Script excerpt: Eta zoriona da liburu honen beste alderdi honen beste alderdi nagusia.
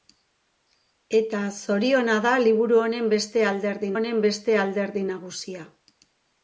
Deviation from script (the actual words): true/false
false